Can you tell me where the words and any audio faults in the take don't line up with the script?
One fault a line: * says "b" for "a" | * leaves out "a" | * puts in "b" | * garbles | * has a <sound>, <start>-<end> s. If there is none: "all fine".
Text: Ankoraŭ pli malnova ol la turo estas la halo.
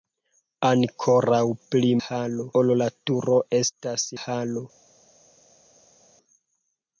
* says "halo" for "malnova"
* leaves out "la"